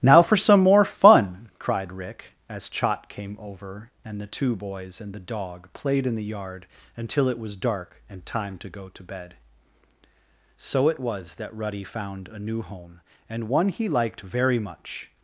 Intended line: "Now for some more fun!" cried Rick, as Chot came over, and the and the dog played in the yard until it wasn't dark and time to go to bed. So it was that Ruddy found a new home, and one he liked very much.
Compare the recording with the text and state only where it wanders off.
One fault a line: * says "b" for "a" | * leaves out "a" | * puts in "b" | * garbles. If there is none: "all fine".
* puts in "two boys"
* says "was" for "wasn't"